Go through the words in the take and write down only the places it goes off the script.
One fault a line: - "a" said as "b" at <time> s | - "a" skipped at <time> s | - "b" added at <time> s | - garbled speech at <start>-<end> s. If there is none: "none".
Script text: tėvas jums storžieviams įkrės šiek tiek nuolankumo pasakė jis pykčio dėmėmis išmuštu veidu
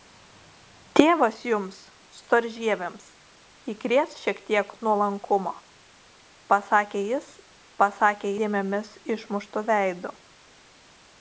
- "pykčio" said as "pasakė" at 7.8 s